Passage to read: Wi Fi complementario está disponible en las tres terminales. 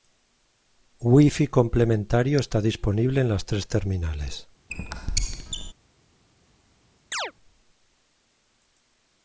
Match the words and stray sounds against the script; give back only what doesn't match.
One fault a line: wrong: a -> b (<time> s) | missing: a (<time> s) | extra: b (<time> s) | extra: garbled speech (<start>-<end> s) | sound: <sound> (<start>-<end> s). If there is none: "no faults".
sound: squeak (4.7-5.7 s)
sound: chirp (7.1-7.3 s)